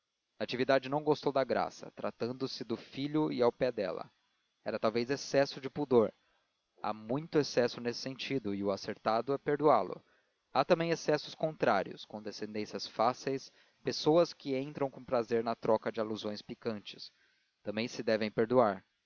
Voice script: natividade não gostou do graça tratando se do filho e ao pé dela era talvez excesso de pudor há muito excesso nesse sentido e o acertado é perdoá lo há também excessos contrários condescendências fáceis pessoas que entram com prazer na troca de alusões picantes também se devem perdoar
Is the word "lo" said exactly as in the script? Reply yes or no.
yes